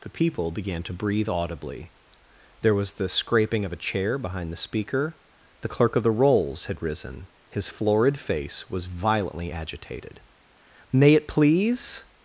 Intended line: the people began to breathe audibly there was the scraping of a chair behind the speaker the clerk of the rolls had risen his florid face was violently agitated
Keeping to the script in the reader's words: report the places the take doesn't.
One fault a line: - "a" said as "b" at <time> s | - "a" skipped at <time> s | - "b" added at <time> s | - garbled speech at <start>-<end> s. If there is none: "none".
- "may it please" added at 10.9 s